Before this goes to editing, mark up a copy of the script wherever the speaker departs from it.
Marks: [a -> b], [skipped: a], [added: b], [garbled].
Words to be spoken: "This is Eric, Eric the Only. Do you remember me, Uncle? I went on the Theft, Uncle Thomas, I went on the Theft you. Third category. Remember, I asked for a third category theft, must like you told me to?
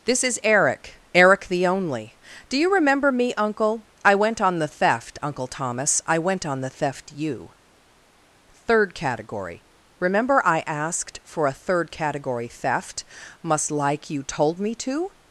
"This is Eric, Eric the Only. Do you remember me, Uncle? I went on the Theft, Uncle Thomas, I went on the Theft you. Third category. Remember, I asked for a third category theft, must like you told me to?